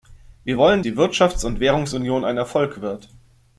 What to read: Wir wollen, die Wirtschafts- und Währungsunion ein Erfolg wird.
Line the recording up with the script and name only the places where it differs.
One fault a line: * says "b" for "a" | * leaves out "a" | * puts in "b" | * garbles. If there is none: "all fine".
all fine